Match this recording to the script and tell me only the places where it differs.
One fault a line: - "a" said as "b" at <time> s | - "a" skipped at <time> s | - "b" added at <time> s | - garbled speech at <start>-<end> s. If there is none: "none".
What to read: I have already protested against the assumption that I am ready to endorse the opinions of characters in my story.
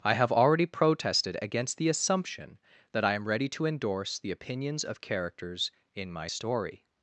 none